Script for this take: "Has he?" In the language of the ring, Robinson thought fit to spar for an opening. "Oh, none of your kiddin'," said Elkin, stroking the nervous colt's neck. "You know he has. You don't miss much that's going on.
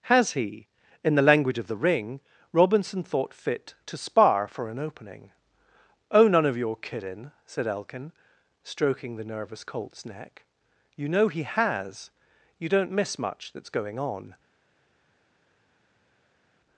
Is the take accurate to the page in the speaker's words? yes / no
yes